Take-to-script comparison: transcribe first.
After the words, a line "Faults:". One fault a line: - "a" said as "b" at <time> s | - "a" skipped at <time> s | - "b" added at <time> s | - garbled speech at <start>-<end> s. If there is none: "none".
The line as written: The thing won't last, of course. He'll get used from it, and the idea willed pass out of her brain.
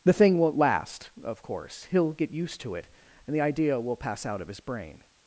The thing won't last, of course. He'll get used to it, and the idea will pass out of his brain.
Faults:
- "from" said as "to" at 2.6 s
- "willed" said as "will" at 3.8 s
- "her" said as "his" at 4.5 s